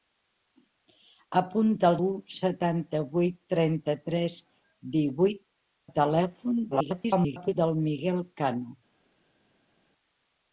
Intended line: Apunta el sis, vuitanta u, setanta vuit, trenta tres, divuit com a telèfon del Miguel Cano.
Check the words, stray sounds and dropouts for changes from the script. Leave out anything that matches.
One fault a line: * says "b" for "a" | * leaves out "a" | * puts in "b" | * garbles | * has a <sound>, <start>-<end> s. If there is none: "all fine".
* leaves out "sis vuitanta"
* leaves out "com"
* garbles